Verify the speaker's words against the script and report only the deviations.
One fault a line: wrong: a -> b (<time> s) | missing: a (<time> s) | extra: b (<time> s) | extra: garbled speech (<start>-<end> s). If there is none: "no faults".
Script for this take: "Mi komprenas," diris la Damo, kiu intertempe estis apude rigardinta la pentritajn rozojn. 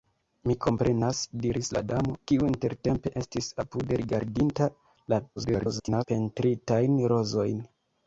extra: garbled speech (5.4-6.0 s)